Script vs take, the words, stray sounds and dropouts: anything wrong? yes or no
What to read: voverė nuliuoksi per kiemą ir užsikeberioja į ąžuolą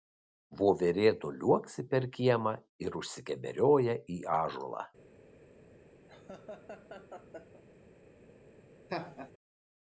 yes